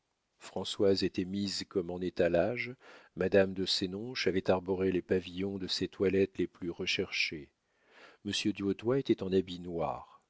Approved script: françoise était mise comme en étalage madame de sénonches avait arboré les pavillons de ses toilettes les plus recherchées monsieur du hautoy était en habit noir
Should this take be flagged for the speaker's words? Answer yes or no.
no